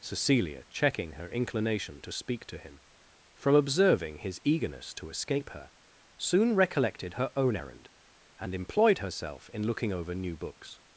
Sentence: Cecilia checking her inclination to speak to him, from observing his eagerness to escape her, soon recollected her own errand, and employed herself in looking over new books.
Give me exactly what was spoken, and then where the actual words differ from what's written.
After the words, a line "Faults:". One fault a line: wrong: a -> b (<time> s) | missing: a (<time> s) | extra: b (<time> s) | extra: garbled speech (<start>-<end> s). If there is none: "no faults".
Cecilia checking her inclination to speak to him, from observing his eagerness to escape her, soon recollected her own errand, and employed herself in looking over new books.
Faults:
no faults